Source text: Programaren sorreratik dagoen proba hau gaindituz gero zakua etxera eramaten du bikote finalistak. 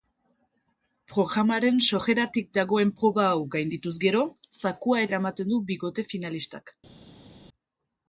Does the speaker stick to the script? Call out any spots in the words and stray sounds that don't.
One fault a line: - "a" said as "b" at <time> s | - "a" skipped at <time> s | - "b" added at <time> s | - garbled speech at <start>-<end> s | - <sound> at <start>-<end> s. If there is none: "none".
- "etxera" skipped at 5.0 s